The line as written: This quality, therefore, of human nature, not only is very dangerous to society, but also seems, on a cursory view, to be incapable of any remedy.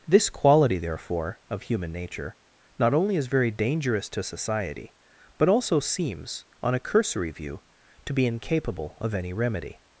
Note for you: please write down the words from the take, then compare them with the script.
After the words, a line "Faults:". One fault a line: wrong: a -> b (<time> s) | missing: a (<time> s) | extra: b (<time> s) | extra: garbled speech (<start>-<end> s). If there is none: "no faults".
This quality, therefore, of human nature, not only is very dangerous to society, but also seems, on a cursory view, to be incapable of any remedy.
Faults:
no faults